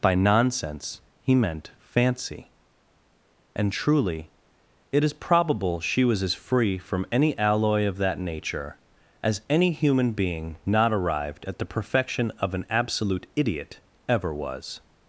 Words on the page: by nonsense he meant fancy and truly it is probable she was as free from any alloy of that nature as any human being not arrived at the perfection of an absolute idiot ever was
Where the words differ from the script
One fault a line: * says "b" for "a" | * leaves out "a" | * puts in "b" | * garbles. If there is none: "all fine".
all fine